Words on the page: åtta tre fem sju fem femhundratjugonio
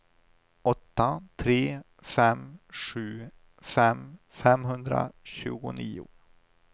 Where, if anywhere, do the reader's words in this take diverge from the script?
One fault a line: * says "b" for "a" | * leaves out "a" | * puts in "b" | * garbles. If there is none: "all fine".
all fine